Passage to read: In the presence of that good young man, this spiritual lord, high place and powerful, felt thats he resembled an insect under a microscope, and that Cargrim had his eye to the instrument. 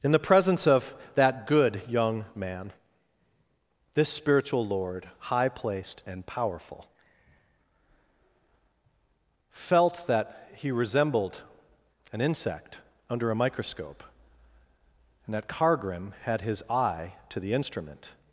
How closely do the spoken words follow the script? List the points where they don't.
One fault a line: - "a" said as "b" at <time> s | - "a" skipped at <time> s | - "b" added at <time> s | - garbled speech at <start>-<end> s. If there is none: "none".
- "place" said as "placed" at 5.5 s
- "thats" said as "that" at 10.1 s